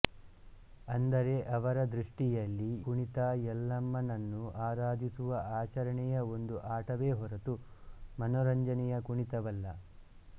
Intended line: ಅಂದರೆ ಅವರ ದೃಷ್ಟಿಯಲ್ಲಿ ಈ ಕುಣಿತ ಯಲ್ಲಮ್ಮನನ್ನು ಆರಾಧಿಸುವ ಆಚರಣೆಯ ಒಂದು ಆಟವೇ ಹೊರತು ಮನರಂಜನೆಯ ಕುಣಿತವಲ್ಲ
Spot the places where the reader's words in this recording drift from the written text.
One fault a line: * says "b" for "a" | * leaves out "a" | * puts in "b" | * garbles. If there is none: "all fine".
* leaves out "ಈ"